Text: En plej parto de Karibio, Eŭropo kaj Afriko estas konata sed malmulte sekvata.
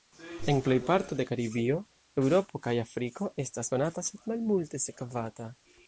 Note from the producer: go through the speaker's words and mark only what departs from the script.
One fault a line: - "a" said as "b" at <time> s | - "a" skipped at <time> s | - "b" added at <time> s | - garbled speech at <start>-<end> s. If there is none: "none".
none